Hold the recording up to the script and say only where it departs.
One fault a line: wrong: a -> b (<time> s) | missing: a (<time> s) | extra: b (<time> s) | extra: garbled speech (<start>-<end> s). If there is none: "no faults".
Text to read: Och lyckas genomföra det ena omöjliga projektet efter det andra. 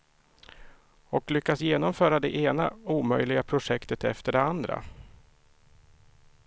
no faults